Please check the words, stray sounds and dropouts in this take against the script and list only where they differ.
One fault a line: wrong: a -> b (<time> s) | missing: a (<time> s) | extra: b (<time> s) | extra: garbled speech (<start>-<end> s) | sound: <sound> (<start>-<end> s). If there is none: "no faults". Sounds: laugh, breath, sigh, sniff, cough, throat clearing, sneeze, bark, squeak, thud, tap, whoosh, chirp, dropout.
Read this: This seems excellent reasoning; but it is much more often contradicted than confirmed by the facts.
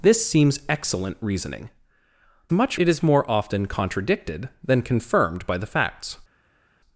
wrong: but -> much (2.5 s)
missing: much (3.0 s)